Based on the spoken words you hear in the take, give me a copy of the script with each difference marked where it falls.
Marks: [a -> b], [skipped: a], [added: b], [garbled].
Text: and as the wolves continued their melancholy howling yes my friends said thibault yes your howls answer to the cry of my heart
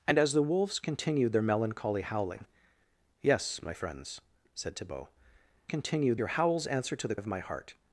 and as the wolves continued their melancholy howling yes my friends said thibault [yes -> continued] your howls answer to the [skipped: cry] of my heart